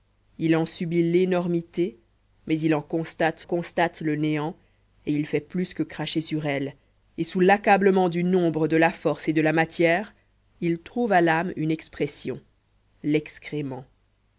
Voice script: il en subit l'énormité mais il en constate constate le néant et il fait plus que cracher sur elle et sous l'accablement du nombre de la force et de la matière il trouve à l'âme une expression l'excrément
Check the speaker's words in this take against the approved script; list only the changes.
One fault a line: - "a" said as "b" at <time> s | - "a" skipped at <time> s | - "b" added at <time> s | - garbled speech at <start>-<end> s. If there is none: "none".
none